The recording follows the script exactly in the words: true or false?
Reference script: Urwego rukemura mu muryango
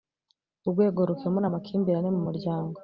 false